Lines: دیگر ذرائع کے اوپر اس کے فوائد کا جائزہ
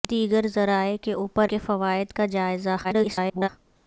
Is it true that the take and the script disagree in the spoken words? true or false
true